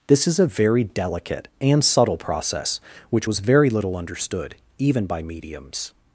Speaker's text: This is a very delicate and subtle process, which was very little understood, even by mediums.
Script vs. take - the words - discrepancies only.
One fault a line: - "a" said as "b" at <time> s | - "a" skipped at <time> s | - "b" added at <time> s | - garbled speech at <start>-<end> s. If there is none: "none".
none